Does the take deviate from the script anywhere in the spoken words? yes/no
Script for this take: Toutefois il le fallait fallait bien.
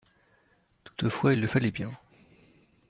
yes